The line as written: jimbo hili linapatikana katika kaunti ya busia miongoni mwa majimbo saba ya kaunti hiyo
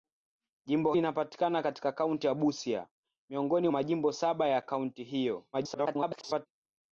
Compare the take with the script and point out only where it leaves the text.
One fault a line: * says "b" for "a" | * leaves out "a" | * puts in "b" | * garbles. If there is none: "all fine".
* leaves out "hili"
* leaves out "mwa"
* garbles